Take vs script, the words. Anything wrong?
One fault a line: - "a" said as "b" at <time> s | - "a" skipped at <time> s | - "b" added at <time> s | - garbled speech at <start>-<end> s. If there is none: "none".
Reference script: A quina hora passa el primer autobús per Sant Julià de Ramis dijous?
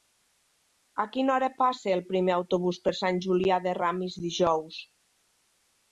none